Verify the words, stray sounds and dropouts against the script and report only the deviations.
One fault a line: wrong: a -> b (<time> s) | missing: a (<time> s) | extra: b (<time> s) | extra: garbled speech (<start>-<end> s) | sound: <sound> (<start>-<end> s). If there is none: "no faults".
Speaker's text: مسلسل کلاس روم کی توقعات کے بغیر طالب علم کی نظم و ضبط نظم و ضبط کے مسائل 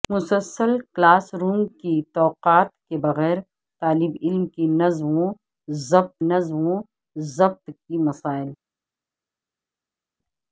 no faults